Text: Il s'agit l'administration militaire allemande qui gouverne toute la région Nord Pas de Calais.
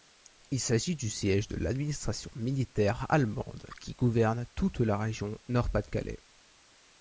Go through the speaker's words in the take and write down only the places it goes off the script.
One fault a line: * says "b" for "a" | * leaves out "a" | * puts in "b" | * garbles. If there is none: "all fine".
* puts in "du siège de"